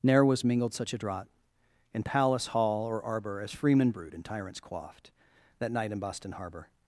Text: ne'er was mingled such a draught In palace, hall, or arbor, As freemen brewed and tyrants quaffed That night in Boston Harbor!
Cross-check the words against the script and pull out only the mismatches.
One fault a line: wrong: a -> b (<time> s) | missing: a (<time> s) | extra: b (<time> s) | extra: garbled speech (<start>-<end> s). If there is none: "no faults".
no faults